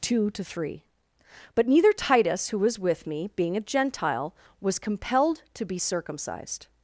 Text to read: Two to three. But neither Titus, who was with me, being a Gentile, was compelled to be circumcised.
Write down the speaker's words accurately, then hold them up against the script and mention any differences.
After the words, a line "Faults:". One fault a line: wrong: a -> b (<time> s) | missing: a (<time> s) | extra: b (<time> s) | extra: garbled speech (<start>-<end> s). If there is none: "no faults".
Two to three. But neither Titus, who was with me, being a Gentile, was compelled to be circumcised.
Faults:
no faults